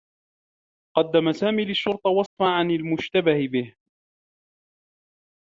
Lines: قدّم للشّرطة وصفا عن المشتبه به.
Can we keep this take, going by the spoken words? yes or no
no